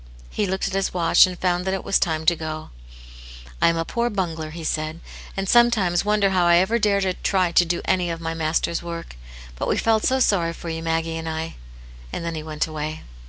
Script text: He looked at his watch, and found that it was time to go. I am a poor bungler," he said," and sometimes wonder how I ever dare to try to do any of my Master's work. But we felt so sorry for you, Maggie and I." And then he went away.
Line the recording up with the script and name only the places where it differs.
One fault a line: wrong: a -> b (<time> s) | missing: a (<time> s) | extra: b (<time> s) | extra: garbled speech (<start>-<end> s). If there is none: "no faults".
no faults